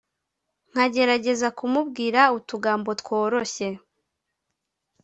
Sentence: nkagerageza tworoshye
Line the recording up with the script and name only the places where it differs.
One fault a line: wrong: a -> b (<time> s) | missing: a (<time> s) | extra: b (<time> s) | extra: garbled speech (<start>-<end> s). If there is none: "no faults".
extra: kumubwira utugambo (1.6 s)